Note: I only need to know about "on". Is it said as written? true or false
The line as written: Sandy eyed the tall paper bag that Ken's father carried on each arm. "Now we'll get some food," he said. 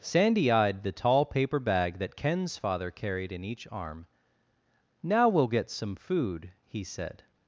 false